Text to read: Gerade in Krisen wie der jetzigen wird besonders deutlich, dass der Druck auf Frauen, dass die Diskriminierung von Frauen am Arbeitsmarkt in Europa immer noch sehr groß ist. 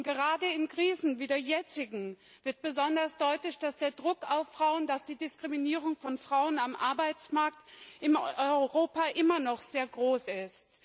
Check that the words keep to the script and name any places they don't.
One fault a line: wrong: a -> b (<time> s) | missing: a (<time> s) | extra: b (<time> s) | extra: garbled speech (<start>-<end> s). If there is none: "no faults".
no faults